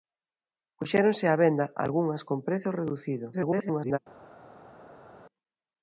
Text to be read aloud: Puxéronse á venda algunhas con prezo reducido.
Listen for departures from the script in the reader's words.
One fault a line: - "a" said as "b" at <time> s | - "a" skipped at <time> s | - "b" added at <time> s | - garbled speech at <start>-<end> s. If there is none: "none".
- garbled speech at 3.3-4.0 s